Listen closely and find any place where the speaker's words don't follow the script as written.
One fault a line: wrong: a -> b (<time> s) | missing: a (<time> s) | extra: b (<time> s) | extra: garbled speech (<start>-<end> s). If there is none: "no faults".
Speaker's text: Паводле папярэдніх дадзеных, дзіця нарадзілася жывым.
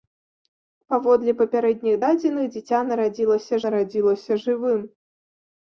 extra: нарадзілася (3.7 s)